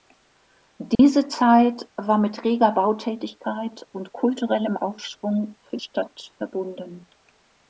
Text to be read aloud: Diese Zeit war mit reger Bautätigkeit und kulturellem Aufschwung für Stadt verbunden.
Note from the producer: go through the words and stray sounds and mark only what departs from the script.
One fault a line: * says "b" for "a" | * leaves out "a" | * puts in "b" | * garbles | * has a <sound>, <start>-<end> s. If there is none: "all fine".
* has a dropout, 0.9-1.0 s